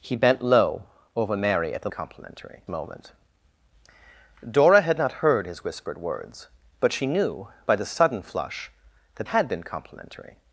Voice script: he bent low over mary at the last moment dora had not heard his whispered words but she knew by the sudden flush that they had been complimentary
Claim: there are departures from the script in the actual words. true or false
true